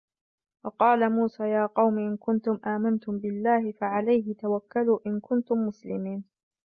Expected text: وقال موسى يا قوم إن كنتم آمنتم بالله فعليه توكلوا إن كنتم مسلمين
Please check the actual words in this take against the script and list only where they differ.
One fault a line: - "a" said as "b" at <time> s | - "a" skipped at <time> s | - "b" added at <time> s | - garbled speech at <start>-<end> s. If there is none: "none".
none